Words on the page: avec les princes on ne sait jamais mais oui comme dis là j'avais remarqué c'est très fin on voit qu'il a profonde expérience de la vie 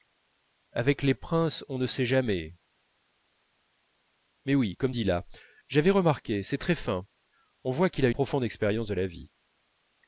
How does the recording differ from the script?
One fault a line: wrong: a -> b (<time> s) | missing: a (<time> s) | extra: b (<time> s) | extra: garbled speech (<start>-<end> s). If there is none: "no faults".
no faults